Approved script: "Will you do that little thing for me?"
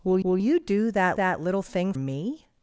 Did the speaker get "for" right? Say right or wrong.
wrong